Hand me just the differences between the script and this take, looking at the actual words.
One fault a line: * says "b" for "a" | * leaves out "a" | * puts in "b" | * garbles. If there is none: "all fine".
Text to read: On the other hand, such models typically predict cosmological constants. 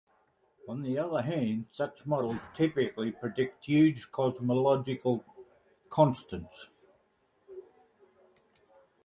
* puts in "huge"